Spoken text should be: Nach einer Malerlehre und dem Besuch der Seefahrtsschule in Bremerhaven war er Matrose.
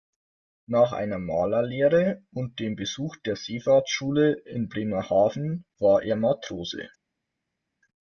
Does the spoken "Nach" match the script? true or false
true